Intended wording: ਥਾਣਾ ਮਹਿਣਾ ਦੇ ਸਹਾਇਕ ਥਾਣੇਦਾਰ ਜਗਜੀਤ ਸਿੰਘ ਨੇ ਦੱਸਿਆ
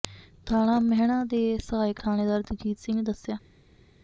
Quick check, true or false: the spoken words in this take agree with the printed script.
true